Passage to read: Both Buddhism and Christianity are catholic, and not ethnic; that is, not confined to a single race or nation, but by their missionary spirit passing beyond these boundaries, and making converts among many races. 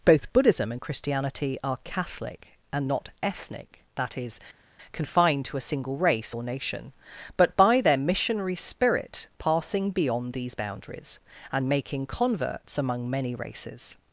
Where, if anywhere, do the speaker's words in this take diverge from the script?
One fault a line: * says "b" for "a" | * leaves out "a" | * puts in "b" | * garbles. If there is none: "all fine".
* leaves out "not"